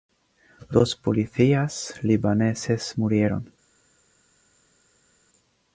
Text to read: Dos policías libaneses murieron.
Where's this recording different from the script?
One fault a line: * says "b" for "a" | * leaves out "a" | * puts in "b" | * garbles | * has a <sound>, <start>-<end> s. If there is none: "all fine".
all fine